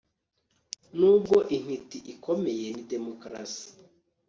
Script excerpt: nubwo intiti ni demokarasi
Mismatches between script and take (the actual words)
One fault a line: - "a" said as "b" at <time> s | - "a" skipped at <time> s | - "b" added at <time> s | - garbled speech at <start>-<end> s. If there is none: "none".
- "ikomeye" added at 2.1 s